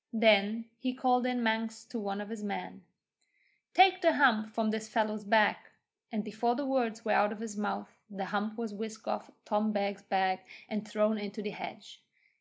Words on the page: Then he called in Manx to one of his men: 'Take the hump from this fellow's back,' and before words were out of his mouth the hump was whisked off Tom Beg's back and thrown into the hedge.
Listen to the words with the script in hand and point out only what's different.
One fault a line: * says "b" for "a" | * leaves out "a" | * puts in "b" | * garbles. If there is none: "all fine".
* puts in "the"